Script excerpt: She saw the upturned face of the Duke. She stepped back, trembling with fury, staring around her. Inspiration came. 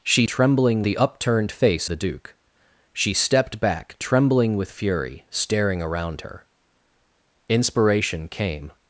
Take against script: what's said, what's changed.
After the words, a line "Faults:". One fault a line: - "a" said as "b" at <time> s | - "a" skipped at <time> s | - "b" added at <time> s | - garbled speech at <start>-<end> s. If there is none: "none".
She trembling the upturned face the Duke. She stepped back, trembling with fury, staring around her. Inspiration came.
Faults:
- "saw" said as "trembling" at 0.3 s
- "of" skipped at 1.9 s